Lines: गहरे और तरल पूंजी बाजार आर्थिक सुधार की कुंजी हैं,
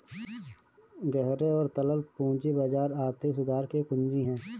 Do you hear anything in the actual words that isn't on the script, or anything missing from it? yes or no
no